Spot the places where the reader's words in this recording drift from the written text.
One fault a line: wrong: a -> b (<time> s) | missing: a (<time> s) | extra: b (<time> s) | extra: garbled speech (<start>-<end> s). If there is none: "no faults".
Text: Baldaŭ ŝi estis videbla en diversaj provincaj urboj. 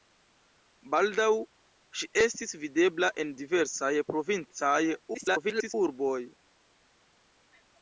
extra: garbled speech (5.1-5.7 s)